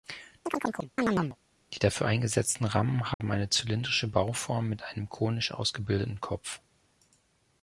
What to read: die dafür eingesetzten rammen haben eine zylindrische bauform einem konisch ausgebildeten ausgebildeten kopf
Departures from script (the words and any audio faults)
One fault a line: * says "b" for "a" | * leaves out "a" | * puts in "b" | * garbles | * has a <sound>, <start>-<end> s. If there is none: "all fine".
* has a chirp, 0.5-1.4 s
* has a dropout, 3.1-3.2 s
* puts in "mit"
* leaves out "ausgebildeten"